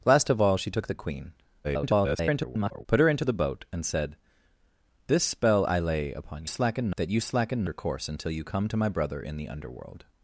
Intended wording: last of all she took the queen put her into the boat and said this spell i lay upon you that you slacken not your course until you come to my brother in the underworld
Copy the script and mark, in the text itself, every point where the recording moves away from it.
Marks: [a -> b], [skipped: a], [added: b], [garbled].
last of all she took the queen [garbled] put her into the boat and said this spell i lay upon [you -> slacken] that you slacken [skipped: not] your course until you come to my brother in the underworld